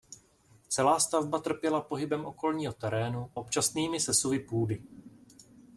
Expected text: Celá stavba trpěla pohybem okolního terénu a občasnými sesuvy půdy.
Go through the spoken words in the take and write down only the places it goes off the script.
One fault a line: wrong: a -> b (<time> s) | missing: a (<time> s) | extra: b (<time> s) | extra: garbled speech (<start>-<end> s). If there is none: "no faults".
missing: a (3.3 s)